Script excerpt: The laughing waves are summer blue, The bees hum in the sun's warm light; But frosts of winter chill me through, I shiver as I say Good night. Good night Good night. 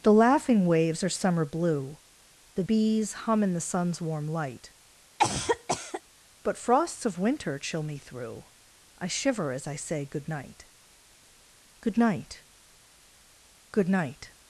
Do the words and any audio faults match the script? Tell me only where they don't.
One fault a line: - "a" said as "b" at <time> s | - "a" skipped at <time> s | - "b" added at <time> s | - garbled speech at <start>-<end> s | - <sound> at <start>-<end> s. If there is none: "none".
- cough at 5.2-6.0 s